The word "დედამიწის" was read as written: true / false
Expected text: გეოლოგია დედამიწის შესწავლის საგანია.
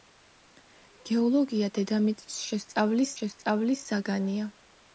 true